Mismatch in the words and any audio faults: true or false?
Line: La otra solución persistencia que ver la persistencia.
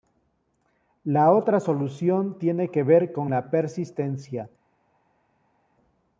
true